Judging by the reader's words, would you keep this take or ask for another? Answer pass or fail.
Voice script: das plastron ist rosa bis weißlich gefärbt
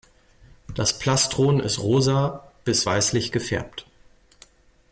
pass